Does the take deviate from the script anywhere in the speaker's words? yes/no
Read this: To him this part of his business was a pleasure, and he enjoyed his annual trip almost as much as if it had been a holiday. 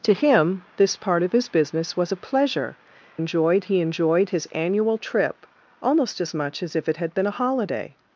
yes